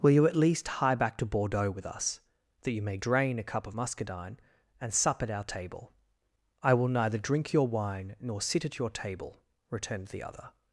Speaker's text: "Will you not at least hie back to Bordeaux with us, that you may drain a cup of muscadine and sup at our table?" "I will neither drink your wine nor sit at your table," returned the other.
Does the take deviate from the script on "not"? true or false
true